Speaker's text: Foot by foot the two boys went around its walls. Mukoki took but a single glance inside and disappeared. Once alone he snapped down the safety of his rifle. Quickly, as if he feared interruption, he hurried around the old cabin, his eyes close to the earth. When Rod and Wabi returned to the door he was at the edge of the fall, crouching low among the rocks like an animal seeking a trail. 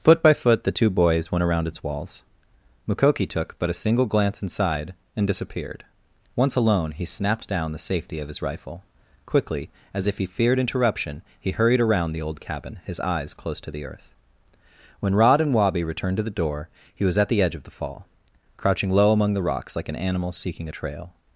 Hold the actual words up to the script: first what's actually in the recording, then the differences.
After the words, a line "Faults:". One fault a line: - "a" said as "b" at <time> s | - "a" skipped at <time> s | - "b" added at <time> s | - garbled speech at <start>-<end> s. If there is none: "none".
Foot by foot the two boys went around its walls. Mukoki took but a single glance inside and disappeared. Once alone he snapped down the safety of his rifle. Quickly, as if he feared interruption, he hurried around the old cabin, his eyes close to the earth. When Rod and Wabi returned to the door he was at the edge of the fall, crouching low among the rocks like an animal seeking a trail.
Faults:
none